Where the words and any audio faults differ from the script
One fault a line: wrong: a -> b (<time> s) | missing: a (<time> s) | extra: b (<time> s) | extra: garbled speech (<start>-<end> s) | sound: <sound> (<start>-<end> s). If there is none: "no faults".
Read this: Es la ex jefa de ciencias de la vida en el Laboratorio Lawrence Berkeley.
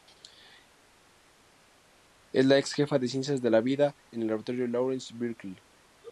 no faults